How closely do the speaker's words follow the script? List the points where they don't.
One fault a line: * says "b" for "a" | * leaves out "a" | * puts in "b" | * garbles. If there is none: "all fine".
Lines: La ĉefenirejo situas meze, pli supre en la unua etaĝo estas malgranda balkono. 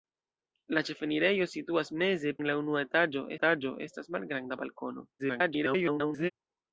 * leaves out "pli supre"
* puts in "etaĝo"
* garbles